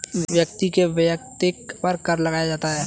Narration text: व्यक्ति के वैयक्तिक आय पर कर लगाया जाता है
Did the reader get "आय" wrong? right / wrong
wrong